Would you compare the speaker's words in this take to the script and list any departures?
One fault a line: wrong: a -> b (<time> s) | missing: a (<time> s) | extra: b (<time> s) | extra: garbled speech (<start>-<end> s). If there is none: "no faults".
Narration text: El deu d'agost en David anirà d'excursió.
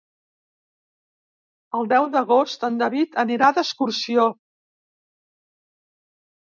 no faults